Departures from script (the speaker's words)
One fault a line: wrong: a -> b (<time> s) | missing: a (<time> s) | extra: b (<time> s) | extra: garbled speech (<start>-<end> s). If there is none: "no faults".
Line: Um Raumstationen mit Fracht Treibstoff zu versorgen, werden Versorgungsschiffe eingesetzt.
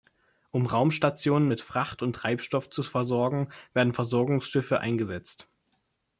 extra: und (2.0 s)